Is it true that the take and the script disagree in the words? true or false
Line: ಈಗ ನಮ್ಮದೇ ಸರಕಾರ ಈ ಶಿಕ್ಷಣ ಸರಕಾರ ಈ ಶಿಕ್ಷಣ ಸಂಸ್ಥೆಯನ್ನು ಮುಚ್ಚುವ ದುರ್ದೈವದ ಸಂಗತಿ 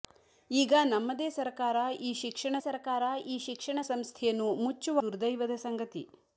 false